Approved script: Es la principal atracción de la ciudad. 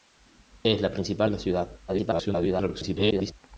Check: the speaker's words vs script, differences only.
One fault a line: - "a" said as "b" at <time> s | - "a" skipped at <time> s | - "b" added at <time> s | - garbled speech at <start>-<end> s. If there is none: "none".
- "atracción" skipped at 1.3 s
- garbled speech at 1.9-3.3 s